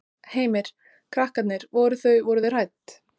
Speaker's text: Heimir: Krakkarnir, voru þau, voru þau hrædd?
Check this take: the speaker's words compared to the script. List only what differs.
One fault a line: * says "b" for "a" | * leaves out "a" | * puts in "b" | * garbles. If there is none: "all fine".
all fine